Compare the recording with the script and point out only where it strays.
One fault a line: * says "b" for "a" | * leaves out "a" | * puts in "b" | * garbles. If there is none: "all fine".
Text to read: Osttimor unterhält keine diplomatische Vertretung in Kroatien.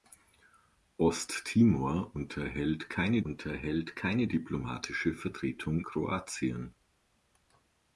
* puts in "unterhält keine"
* leaves out "in"